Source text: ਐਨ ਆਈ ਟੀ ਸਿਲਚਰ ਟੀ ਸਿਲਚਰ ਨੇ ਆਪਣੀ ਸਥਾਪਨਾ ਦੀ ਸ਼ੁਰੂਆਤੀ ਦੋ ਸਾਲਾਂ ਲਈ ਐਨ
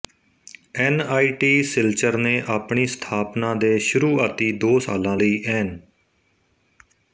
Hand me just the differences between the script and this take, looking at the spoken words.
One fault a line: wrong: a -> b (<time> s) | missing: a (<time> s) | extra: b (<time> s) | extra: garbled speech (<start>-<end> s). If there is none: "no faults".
missing: ਟੀ ਸਿਲਚਰ (2.2 s)
wrong: ਦੀ -> ਦੇ (3.5 s)